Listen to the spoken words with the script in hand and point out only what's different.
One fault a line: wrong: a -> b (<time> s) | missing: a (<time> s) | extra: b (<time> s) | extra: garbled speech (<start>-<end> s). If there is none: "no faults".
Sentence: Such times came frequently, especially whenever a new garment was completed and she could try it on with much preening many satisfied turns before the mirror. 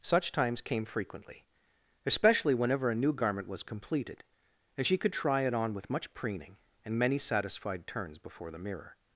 extra: and (6.8 s)